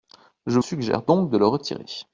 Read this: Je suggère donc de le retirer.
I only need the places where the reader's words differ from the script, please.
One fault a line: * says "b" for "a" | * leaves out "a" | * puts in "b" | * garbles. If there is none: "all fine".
all fine